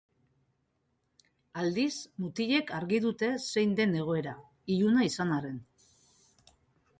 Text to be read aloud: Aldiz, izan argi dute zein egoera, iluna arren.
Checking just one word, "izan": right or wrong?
wrong